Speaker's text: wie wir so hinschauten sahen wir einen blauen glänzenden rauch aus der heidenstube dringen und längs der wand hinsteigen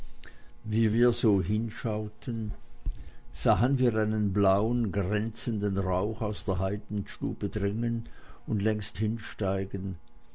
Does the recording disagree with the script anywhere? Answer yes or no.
yes